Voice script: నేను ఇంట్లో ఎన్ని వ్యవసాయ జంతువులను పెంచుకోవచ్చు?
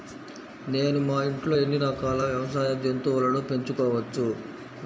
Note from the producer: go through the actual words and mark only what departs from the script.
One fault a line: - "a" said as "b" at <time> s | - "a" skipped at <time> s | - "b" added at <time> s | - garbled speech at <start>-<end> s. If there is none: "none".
- "మా" added at 1.0 s
- "రకాల" added at 1.8 s